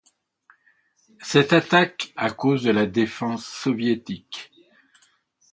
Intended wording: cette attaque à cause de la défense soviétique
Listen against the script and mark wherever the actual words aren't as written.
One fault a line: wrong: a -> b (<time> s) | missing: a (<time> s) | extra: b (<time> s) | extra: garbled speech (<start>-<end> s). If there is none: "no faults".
no faults